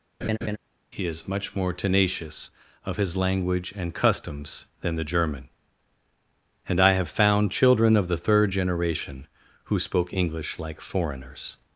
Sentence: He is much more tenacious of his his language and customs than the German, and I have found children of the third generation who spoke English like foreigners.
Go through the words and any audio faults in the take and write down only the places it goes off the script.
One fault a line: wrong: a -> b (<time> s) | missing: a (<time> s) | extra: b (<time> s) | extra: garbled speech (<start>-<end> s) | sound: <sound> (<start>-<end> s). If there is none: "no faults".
sound: laugh (0.2-0.6 s)
missing: his (3.2 s)